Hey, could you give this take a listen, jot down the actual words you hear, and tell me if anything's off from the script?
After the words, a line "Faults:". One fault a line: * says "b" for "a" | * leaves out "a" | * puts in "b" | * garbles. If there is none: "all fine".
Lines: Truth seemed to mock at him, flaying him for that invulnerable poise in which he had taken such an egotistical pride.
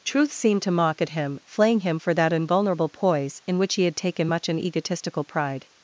Truth seemed to mock at him, flaying him for that invulnerable poise in which he had taken much an egotistical pride.
Faults:
* says "much" for "such"